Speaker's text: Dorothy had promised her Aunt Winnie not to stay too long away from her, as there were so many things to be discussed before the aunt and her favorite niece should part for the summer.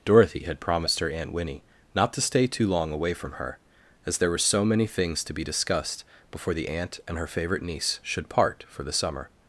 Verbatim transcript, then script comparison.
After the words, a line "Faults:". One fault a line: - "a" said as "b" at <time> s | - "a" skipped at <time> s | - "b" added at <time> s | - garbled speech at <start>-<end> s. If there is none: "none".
Dorothy had promised her Aunt Winnie not to stay too long away from her, as there were so many things to be discussed before the aunt and her favorite niece should part for the summer.
Faults:
none